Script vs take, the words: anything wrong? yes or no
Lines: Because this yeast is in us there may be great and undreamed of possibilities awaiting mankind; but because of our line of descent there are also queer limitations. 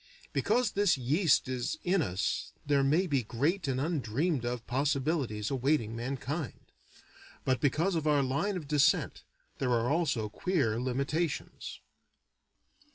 no